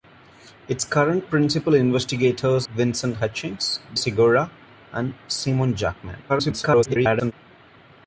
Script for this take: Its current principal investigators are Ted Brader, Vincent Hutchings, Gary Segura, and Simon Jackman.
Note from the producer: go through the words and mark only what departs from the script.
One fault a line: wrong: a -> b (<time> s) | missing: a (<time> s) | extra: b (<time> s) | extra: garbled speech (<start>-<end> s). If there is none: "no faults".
missing: are Ted Brader (2.7 s)
missing: Gary (3.8 s)
extra: garbled speech (6.3-7.3 s)